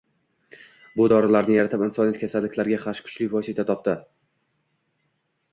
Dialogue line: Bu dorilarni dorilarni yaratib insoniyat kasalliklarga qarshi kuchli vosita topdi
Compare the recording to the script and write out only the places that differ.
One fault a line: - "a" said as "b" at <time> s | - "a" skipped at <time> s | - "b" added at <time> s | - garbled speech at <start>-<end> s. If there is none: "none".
- "dorilarni" skipped at 1.6 s